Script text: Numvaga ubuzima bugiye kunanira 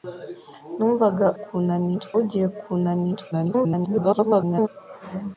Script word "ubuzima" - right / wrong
wrong